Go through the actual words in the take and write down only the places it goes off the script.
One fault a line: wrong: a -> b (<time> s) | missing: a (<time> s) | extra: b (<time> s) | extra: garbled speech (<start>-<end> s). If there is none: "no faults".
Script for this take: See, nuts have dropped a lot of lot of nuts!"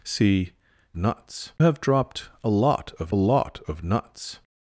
no faults